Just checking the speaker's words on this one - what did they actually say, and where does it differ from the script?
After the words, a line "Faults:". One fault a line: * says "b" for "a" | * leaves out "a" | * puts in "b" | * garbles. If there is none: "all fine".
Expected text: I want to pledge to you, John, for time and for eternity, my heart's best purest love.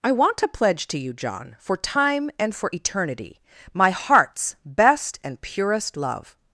I want to pledge to you, John, for time and for eternity, my heart's best and purest love.
Faults:
* puts in "and"